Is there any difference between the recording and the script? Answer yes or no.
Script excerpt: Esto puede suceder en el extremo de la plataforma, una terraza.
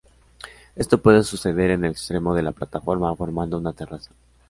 yes